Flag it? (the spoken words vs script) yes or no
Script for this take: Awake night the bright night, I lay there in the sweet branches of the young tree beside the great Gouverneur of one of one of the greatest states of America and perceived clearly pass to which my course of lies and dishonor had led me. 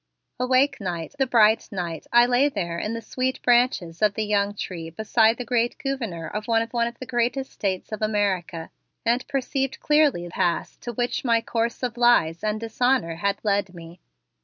no